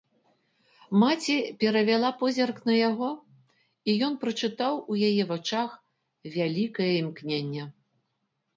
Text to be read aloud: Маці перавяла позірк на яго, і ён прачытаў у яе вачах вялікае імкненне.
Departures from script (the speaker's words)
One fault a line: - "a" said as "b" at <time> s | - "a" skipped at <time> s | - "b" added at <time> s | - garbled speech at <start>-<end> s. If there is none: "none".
none